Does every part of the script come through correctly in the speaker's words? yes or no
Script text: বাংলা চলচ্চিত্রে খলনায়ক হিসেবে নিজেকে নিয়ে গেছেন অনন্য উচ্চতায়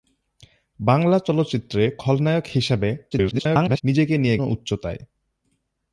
no